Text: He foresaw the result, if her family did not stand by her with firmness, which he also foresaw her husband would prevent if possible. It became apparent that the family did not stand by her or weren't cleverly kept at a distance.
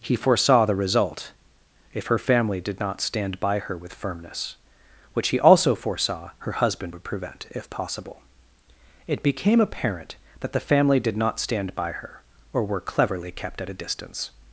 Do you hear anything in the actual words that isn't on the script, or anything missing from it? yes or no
yes